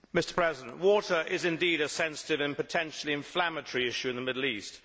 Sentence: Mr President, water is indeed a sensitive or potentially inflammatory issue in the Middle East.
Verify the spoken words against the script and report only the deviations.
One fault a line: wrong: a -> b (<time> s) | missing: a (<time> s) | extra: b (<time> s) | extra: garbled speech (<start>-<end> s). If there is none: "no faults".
wrong: or -> and (2.4 s)